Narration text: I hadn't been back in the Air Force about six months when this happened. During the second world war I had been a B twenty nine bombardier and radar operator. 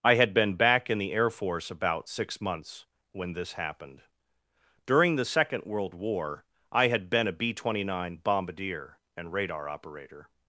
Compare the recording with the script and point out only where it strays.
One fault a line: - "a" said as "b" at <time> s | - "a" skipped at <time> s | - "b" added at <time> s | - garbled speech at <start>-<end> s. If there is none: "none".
- "hadn't" said as "had" at 0.1 s